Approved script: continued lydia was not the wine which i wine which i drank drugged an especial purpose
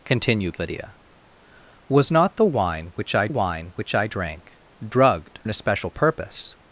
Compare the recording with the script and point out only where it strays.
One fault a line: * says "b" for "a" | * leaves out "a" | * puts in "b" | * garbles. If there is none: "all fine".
all fine